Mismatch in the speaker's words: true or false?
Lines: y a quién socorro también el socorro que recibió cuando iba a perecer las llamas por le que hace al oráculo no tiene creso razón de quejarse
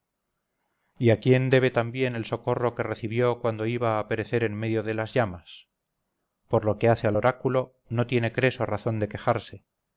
true